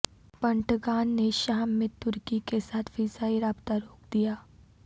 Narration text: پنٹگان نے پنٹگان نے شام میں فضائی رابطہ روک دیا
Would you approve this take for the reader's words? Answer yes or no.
no